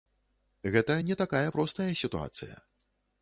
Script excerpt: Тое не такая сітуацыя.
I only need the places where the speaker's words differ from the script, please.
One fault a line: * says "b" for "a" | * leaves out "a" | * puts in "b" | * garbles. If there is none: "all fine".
* says "Гэта" for "Тое"
* puts in "простая"